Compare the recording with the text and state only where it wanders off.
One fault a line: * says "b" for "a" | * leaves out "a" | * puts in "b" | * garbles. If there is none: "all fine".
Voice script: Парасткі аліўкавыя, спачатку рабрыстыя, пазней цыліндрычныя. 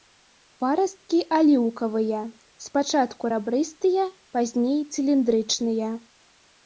all fine